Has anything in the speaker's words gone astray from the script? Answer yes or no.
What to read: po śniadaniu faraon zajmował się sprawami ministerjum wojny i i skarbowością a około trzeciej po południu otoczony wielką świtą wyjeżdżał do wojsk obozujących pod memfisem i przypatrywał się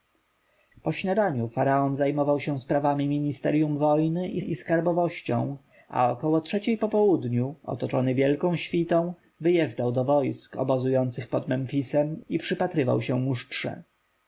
no